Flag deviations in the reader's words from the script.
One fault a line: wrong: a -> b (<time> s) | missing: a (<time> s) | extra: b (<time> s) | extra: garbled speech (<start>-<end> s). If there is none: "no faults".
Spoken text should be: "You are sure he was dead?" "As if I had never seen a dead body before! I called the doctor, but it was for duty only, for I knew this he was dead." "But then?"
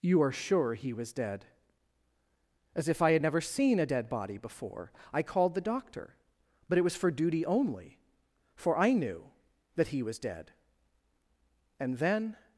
wrong: this -> that (9.7 s)
wrong: But -> And (11.8 s)